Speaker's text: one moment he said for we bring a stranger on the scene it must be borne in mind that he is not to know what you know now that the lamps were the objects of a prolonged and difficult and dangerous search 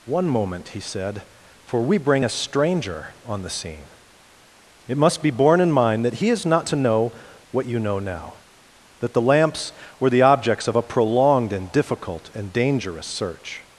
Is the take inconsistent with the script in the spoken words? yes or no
no